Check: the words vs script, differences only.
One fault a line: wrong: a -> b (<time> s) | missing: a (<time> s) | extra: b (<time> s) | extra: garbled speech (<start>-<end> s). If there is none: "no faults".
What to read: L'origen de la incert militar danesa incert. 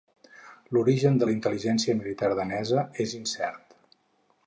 wrong: incert -> intel·ligència (1.3 s)
extra: és (3.1 s)